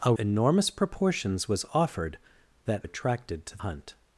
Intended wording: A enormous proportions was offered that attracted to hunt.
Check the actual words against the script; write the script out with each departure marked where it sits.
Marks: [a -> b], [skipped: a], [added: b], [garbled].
A enormous proportions was offered that attracted to hunt.